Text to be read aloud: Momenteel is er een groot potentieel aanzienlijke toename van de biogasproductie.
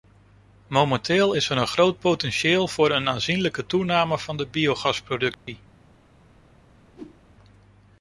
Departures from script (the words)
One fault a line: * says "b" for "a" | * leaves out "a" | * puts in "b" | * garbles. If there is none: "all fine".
* puts in "voor een"